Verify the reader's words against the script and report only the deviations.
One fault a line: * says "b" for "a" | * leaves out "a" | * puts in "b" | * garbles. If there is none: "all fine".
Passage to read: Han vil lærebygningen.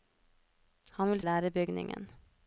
all fine